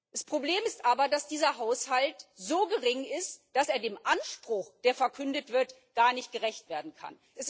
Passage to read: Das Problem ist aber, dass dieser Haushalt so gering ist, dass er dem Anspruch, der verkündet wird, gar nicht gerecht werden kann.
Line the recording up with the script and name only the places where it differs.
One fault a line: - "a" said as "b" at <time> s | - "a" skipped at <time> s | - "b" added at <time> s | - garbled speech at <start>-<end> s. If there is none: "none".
none